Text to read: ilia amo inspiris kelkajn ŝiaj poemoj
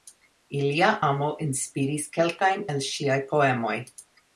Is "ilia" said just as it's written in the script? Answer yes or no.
yes